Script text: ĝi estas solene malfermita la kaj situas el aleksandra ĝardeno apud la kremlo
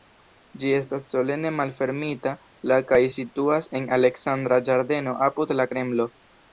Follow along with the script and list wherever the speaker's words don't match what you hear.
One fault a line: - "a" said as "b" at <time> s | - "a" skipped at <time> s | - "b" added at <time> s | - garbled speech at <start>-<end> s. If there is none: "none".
- "el" said as "en" at 3.8 s